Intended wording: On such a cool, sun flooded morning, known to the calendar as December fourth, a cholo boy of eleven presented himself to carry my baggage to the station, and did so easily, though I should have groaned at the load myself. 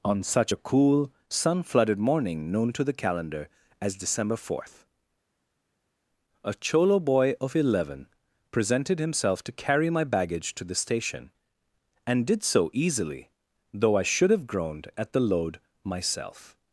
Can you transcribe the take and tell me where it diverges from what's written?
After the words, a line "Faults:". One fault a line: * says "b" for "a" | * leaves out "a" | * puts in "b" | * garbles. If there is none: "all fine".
On such a cool, sun flooded morning, known to the calendar as December fourth, a cholo boy of eleven presented himself to carry my baggage to the station, and did so easily, though I should have groaned at the load myself.
Faults:
all fine